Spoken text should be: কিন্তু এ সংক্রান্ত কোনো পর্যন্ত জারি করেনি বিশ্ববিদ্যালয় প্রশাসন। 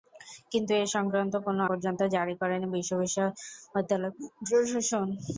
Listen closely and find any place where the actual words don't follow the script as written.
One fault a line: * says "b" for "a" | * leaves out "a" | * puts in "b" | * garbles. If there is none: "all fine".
all fine